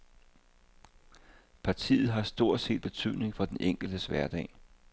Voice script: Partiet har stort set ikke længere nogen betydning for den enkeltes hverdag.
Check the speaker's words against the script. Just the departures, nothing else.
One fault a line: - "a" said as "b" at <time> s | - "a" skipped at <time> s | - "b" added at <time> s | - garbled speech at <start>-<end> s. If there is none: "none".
- "ikke længere nogen" skipped at 2.8 s